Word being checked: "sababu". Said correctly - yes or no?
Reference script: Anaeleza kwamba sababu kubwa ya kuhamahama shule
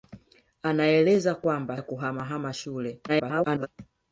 no